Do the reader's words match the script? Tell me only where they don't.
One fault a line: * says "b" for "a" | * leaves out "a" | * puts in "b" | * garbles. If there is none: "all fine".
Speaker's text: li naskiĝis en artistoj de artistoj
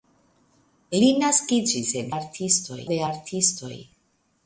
all fine